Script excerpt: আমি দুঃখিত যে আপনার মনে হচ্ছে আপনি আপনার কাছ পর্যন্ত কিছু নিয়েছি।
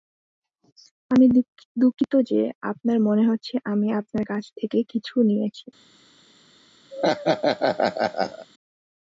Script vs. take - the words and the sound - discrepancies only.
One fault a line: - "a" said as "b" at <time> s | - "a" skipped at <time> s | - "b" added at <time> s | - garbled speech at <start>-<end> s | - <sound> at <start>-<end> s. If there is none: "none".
- "আপনি" said as "আমি" at 3.6 s
- "পর্যন্ত" said as "থেকে" at 4.6 s
- laugh at 6.9-8.5 s